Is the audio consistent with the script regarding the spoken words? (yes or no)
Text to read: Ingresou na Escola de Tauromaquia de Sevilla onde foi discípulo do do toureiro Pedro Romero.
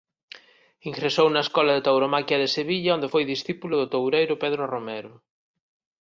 no